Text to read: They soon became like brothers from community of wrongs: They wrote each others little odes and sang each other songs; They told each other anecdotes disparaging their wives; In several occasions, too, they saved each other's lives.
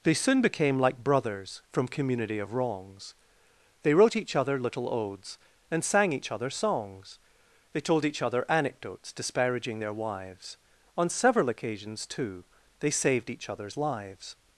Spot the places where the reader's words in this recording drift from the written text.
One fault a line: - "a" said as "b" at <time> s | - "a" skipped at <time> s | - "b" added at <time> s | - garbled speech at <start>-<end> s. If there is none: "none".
- "others" said as "other" at 4.3 s
- "In" said as "On" at 11.0 s